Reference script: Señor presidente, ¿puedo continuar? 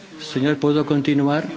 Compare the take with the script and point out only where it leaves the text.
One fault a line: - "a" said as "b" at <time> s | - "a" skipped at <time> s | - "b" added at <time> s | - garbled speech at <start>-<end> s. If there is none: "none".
- "presidente" skipped at 0.6 s